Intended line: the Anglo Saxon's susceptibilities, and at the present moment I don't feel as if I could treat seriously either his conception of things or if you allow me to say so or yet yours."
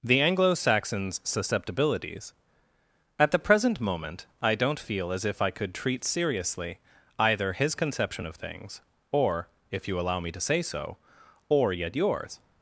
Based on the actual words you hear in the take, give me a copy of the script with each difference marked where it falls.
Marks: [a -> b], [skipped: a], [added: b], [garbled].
the Anglo Saxon's susceptibilities, [skipped: and] at the present moment I don't feel as if I could treat seriously either his conception of things or if you allow me to say so or yet yours."